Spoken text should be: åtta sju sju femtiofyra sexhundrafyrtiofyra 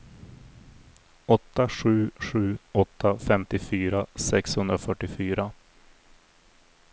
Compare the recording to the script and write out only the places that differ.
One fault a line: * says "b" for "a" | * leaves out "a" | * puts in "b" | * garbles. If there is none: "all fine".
* puts in "åtta"